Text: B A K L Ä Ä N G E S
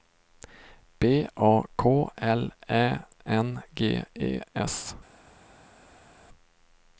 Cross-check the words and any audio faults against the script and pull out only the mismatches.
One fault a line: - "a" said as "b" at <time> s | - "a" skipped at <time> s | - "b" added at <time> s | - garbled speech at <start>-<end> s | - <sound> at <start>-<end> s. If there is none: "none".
- "Ä" skipped at 2.8 s